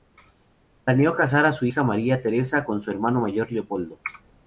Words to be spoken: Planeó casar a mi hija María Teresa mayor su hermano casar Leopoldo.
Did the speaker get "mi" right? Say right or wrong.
wrong